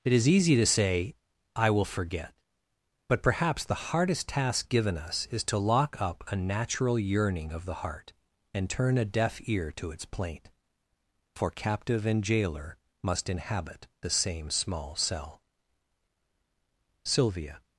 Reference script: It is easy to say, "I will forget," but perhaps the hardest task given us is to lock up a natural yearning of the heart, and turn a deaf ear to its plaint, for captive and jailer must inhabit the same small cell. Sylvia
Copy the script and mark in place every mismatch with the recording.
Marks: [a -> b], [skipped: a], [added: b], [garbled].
It is easy to say, "I will forget," but perhaps the hardest task given us is to lock up a natural yearning of the heart, and turn a deaf ear to its plaint, for captive and jailer must inhabit the same small cell. Sylvia